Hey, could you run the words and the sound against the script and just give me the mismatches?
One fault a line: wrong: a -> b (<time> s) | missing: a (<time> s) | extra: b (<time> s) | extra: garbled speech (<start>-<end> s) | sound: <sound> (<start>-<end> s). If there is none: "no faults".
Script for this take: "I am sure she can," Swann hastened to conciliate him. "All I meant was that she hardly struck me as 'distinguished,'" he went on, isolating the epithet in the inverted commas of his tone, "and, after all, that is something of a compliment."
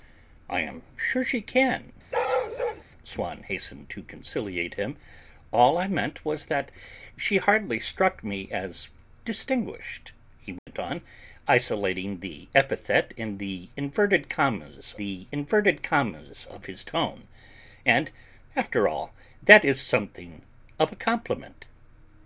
sound: bark (2.1-2.8 s)
sound: dropout (10.6-10.7 s)
extra: the inverted commas (15.0 s)